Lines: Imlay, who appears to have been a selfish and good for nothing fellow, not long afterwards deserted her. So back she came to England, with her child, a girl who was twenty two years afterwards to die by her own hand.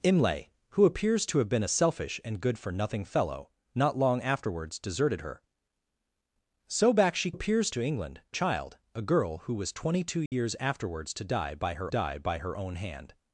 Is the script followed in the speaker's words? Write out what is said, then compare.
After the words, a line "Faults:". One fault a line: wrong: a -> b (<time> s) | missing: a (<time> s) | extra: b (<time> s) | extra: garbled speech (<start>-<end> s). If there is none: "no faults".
Imlay, who appears to have been a selfish and good for nothing fellow, not long afterwards deserted her. So back she appears to England, child, a girl who was twenty two years afterwards to die by her die by her own hand.
Faults:
wrong: came -> appears (7.3 s)
missing: with her (8.2 s)
extra: die by her (11.9 s)